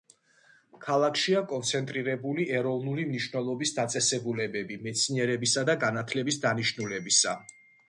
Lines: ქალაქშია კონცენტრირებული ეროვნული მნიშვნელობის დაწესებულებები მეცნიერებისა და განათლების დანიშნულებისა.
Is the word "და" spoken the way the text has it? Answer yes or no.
yes